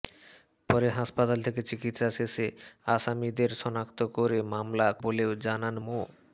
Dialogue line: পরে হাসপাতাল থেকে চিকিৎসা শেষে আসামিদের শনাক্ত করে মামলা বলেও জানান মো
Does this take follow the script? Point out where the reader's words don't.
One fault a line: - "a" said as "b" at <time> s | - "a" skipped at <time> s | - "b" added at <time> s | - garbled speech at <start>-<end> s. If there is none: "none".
none